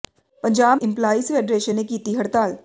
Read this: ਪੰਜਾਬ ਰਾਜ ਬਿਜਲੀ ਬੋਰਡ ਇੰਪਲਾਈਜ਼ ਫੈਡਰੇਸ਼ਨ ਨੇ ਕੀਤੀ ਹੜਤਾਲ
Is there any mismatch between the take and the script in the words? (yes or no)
yes